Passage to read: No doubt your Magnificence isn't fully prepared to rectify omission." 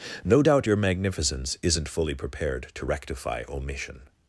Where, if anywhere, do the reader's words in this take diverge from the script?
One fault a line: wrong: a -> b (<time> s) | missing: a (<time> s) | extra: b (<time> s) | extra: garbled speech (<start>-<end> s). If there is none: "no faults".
no faults